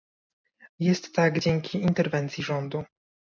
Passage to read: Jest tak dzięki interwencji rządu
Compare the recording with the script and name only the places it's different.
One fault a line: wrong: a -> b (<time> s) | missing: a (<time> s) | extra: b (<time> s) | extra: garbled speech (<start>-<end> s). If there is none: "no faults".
no faults